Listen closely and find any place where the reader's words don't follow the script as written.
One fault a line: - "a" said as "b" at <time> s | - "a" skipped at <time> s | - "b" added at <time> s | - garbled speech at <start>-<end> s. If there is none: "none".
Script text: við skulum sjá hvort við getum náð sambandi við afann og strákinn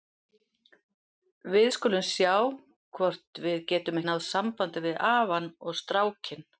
none